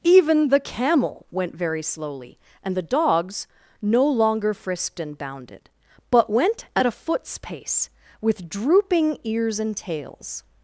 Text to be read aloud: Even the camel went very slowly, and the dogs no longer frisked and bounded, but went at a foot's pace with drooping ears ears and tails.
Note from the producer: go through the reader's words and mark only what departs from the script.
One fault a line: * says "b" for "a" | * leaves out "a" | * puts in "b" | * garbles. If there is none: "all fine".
* leaves out "ears"